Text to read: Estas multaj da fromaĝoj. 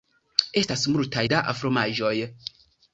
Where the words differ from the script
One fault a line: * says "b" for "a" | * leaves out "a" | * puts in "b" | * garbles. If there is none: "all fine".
all fine